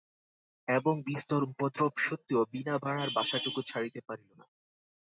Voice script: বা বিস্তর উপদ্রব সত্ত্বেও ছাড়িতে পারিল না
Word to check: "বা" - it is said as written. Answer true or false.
false